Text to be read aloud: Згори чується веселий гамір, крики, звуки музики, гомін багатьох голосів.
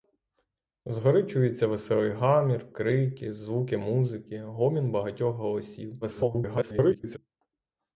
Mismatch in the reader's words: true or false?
true